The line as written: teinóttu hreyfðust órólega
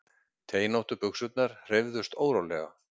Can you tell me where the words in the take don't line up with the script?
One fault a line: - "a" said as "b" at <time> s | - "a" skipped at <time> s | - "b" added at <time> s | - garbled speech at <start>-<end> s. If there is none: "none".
- "buxurnar" added at 1.0 s